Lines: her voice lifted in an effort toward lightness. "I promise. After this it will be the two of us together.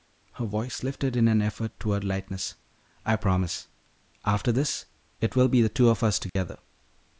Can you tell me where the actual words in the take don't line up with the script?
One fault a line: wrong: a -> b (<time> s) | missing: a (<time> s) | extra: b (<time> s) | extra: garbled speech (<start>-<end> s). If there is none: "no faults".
no faults